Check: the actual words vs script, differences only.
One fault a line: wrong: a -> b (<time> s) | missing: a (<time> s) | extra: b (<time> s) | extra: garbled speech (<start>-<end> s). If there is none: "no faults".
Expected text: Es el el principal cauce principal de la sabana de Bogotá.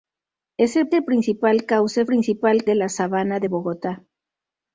no faults